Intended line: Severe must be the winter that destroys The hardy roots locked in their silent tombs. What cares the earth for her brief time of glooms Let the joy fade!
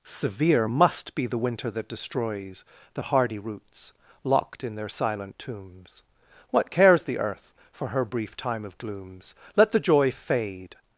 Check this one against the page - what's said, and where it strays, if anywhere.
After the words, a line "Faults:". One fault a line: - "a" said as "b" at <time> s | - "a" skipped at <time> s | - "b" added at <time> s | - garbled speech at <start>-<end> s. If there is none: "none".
Severe must be the winter that destroys The hardy roots locked in their silent tombs. What cares the earth for her brief time of glooms Let the joy fade!
Faults:
none